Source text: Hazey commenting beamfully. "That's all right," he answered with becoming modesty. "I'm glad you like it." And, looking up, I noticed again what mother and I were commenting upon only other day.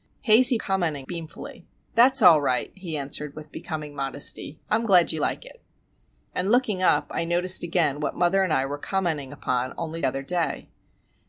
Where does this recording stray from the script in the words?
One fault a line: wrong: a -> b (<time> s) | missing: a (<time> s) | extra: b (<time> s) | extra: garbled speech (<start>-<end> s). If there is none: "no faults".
no faults